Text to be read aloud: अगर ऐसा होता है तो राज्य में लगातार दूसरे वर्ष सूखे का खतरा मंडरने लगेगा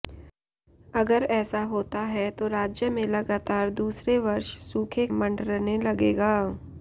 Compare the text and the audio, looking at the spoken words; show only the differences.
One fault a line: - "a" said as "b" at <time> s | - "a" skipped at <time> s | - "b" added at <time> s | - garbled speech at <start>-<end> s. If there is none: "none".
- "का खतरा" skipped at 5.1 s